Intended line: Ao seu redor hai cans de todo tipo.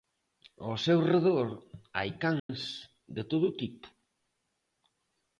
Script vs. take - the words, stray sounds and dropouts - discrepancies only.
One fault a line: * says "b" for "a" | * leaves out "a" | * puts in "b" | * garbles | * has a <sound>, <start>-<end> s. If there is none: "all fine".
* has a dropout, 2.4-2.5 s